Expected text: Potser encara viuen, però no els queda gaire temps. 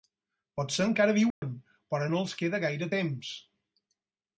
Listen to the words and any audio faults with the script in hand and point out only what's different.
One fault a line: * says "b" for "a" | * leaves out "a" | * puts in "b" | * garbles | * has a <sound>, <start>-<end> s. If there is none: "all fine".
* has a dropout, 1.3-1.4 s